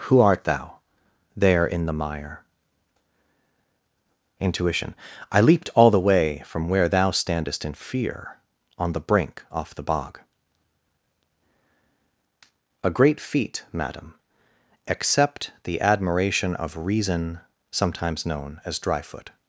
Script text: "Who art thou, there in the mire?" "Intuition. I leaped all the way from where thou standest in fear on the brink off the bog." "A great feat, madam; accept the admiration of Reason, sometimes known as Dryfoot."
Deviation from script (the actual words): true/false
false